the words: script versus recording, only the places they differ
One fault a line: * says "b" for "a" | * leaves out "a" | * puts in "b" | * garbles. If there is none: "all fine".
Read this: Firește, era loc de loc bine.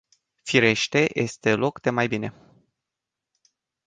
* says "este" for "era"
* says "mai" for "loc"